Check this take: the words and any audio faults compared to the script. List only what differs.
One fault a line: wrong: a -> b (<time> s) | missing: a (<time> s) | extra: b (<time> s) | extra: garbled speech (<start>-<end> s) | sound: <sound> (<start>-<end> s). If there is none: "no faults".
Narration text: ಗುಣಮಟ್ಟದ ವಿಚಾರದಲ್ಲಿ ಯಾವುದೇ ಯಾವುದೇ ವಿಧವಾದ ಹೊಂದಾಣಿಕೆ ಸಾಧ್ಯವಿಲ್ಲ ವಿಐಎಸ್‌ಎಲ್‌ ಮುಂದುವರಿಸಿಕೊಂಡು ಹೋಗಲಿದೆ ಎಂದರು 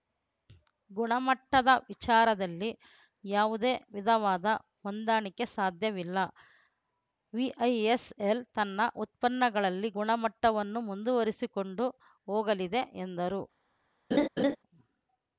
missing: ಯಾವುದೇ (3.7 s)
extra: ತನ್ನ ಉತ್ಪನ್ನಗಳಲ್ಲಿ ಗುಣಮಟ್ಟವನ್ನು (8.5 s)
sound: laugh (14.1-14.6 s)